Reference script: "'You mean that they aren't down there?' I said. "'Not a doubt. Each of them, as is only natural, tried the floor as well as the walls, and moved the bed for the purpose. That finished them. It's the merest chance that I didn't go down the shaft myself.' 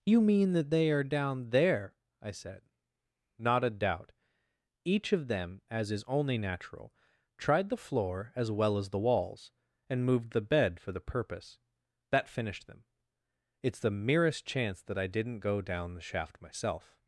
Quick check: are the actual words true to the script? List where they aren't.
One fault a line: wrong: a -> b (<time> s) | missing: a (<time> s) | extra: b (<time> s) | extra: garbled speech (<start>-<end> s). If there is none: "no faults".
wrong: aren't -> are (0.9 s)